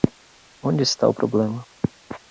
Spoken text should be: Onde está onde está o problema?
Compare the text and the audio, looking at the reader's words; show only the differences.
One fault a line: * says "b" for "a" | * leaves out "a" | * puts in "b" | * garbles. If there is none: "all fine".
* leaves out "onde está"